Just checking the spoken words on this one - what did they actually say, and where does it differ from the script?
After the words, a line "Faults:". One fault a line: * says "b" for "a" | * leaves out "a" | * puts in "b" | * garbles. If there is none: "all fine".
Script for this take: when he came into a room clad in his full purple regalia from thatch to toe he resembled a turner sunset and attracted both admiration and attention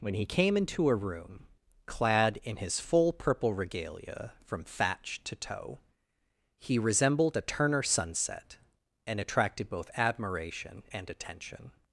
when he came into a room clad in his full purple regalia from thatch to toe he resembled a turner sunset and attracted both admiration and attention
Faults:
all fine